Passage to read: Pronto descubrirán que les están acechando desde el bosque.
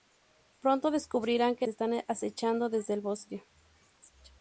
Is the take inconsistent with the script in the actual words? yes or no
yes